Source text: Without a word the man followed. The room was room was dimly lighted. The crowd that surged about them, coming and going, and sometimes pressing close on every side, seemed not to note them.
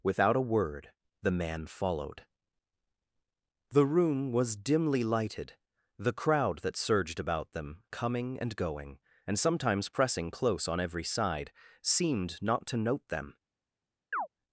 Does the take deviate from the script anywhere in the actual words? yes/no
yes